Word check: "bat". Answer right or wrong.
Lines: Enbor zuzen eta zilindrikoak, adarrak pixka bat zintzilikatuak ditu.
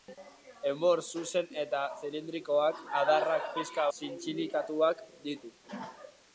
wrong